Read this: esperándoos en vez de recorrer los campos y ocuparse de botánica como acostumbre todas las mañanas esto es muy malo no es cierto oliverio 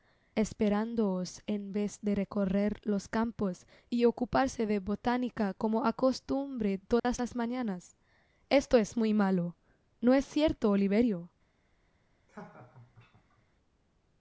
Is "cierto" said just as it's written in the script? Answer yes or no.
yes